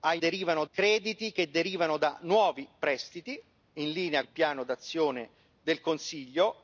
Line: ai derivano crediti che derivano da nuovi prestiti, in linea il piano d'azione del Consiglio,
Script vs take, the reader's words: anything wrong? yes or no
no